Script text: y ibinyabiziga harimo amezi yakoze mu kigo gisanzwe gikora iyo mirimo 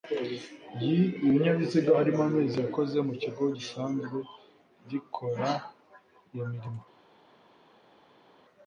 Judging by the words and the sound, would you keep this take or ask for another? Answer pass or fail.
pass